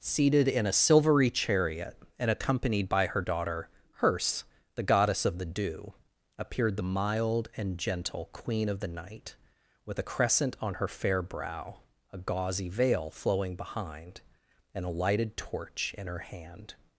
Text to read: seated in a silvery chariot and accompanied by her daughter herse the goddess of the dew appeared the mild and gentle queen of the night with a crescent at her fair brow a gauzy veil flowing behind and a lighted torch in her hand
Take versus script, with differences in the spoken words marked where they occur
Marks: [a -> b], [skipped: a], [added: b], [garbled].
seated in a silvery chariot and accompanied by her daughter herse the goddess of the dew appeared the mild and gentle queen of the night with a crescent [at -> on] her fair brow a gauzy veil flowing behind and a lighted torch in her hand